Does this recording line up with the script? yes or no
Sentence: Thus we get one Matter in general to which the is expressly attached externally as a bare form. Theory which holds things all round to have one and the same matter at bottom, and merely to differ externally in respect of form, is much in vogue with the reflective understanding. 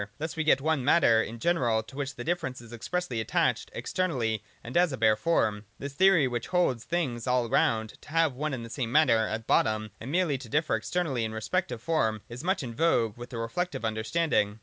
no